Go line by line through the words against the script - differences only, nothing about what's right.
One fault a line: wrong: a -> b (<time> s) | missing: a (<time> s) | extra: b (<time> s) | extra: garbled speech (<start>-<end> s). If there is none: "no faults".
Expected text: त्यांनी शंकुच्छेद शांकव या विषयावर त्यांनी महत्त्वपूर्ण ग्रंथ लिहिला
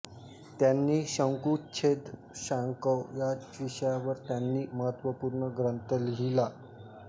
no faults